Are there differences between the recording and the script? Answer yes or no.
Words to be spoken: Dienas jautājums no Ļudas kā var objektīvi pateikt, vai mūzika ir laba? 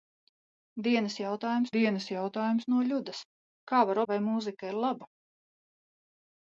yes